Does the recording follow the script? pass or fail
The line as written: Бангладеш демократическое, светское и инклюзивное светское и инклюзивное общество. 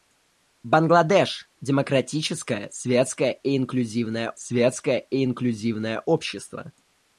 pass